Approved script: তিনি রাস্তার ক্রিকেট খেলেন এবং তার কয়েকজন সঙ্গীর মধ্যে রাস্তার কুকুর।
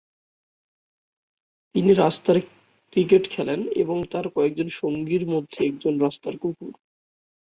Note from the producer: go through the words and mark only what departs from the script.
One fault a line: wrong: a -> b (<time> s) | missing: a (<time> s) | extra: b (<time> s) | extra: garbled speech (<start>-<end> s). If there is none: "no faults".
extra: একজন (5.6 s)